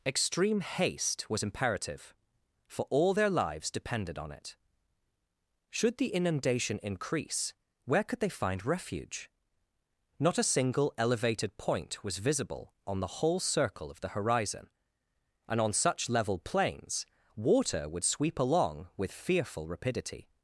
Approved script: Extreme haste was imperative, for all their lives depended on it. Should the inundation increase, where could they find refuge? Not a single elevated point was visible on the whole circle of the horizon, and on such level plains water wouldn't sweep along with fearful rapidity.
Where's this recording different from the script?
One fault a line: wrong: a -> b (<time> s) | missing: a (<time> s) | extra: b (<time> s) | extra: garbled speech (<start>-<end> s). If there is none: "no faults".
wrong: wouldn't -> would (17.9 s)